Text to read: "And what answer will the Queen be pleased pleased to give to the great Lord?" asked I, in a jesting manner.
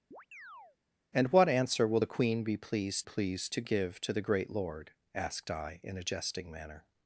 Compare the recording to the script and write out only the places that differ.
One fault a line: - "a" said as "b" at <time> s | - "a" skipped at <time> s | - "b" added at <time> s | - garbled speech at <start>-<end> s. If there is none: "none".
none